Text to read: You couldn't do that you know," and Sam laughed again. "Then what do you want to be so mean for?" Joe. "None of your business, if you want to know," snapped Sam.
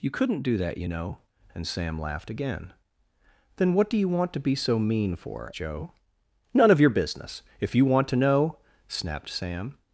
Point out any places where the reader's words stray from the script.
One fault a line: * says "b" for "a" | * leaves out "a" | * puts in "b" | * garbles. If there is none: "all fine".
all fine